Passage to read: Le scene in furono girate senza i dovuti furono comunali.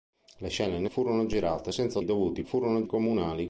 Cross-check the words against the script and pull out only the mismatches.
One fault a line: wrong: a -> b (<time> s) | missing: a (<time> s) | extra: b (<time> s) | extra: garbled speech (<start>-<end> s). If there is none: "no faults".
no faults